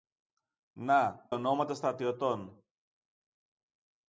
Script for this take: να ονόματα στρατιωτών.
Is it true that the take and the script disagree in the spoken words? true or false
false